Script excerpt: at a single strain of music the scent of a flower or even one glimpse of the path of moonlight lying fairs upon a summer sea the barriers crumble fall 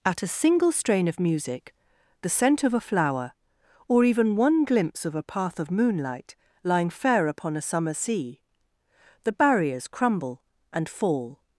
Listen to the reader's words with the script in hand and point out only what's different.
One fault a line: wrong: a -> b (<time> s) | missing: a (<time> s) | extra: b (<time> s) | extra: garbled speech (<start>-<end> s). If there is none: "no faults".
wrong: the -> a (5.1 s)
wrong: fairs -> fair (6.9 s)
extra: and (10.7 s)